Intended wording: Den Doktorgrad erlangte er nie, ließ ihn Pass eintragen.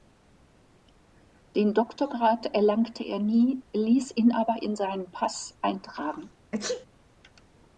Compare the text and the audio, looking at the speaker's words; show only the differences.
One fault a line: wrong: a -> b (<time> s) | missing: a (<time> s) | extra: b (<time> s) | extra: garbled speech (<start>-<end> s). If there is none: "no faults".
extra: aber in seinen (4.3 s)